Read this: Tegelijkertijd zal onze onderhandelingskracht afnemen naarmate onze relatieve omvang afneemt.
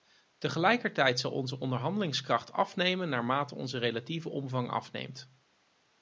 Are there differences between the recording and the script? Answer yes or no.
no